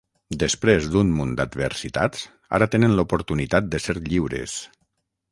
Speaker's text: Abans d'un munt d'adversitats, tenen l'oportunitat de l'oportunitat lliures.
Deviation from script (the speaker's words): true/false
true